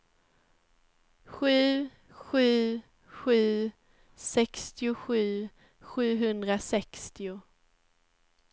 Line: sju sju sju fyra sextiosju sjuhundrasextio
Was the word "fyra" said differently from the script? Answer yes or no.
yes